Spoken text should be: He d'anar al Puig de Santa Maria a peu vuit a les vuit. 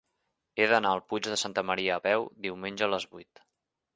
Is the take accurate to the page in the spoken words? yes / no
no